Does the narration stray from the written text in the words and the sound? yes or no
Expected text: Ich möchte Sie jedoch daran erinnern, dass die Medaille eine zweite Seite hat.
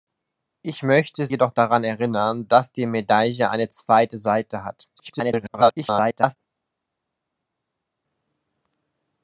yes